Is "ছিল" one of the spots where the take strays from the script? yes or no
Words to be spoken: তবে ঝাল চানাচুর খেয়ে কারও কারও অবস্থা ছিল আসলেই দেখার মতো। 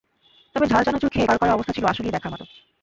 no